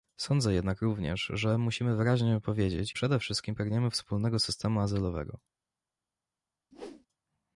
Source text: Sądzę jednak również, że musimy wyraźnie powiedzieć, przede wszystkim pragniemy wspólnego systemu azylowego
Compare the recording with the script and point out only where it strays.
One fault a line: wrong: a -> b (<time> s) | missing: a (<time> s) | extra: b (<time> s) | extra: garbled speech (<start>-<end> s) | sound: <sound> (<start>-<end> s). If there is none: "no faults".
sound: whoosh (6.7-7.1 s)